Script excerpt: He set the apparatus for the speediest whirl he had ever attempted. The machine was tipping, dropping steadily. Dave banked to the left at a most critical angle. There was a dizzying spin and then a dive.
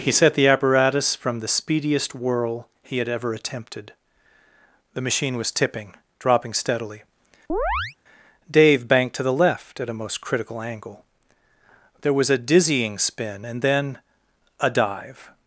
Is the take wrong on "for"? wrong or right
wrong